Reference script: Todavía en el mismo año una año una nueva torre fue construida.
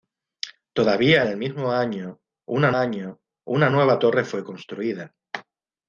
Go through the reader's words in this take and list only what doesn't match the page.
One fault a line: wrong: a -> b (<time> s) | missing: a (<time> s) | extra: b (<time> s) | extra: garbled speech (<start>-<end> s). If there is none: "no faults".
no faults